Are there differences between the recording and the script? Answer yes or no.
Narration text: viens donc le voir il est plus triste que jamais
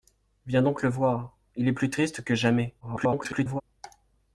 yes